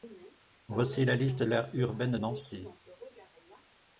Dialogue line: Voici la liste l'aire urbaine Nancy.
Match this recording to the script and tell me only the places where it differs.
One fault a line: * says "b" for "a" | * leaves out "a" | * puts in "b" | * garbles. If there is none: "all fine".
all fine